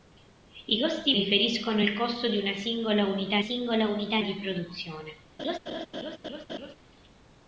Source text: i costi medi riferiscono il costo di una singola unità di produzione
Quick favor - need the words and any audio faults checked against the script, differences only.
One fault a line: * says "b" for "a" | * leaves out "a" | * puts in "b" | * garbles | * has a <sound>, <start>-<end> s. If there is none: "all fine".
* leaves out "medi"
* puts in "singola unità"
* has a laugh, 5.4-6.8 s